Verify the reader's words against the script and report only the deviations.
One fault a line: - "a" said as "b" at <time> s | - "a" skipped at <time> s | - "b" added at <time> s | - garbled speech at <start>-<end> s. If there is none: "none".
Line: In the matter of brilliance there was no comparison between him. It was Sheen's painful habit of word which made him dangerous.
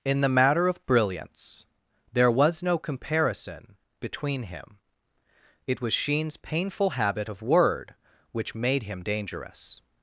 none